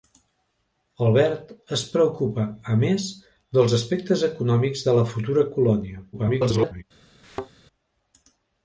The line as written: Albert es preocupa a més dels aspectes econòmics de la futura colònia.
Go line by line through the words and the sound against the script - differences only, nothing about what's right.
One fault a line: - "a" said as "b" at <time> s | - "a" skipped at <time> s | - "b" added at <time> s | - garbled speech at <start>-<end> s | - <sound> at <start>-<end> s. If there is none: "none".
- garbled speech at 6.1-6.8 s
- thud at 7.2-7.5 s